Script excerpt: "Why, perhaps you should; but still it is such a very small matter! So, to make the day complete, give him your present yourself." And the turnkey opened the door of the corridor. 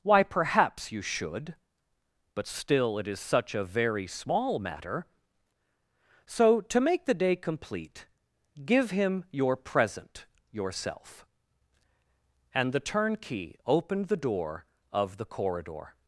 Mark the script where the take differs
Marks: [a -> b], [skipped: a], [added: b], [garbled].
"Why, perhaps you should; but still it is such a very small matter! So, to make the day complete, give him your present yourself." And the turnkey opened the door of the corridor.